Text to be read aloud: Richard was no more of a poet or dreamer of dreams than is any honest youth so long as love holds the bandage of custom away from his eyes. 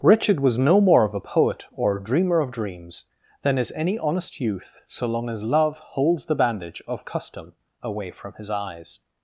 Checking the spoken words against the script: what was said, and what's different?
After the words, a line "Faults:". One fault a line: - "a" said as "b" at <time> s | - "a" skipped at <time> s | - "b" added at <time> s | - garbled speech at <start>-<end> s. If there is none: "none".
Richard was no more of a poet or dreamer of dreams than is any honest youth so long as love holds the bandage of custom away from his eyes.
Faults:
none